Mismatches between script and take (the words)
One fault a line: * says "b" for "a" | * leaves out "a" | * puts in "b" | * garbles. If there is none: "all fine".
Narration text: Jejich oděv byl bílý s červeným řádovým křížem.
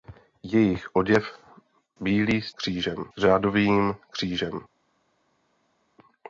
* leaves out "byl"
* says "křížem" for "červeným"